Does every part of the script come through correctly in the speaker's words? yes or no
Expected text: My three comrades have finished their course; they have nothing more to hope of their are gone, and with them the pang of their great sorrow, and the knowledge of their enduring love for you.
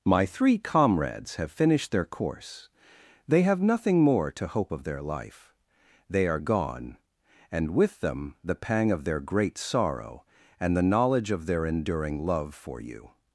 no